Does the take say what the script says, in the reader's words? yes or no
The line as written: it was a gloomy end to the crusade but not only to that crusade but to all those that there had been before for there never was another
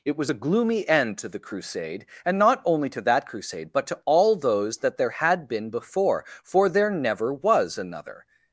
no